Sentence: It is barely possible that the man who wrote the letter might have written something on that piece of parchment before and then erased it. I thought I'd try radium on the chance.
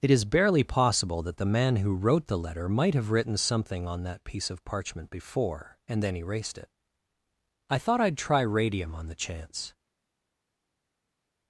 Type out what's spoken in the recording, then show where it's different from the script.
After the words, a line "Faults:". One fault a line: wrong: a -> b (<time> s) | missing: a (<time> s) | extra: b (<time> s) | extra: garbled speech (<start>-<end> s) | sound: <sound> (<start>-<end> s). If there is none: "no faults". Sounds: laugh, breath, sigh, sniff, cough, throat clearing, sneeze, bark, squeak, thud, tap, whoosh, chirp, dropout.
It is barely possible that the man who wrote the letter might have written something on that piece of parchment before and then erased it. I thought I'd try radium on the chance.
Faults:
no faults